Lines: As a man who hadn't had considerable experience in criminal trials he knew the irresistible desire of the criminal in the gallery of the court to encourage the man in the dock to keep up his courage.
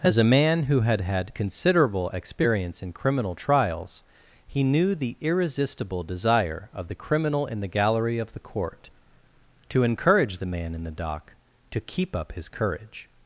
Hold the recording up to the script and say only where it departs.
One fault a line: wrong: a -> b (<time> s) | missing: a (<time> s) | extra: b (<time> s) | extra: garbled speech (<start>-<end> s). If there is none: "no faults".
wrong: hadn't -> had (0.8 s)